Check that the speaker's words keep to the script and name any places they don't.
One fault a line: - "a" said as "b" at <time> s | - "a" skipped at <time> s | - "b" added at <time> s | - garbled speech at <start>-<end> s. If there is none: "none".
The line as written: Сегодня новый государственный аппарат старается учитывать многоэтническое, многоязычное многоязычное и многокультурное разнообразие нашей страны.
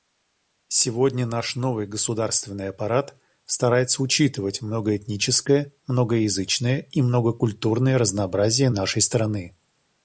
- "наш" added at 1.3 s
- "многоязычное" skipped at 6.9 s